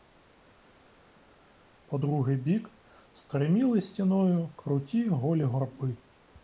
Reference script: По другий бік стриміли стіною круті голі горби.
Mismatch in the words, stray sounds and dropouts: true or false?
false